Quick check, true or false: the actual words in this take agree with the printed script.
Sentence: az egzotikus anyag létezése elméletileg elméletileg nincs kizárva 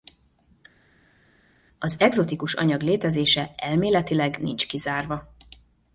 false